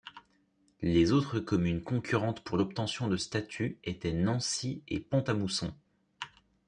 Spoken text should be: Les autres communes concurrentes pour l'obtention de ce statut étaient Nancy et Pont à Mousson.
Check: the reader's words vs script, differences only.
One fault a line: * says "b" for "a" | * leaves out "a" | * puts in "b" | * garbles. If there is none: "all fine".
* leaves out "ce"